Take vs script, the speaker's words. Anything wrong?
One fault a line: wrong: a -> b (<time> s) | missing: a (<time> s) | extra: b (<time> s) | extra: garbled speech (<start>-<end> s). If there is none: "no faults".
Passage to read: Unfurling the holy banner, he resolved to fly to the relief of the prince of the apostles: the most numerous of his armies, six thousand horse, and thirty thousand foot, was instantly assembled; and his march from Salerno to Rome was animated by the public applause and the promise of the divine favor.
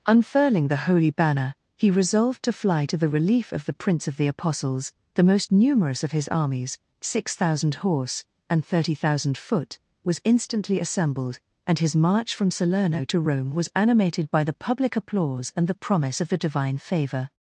no faults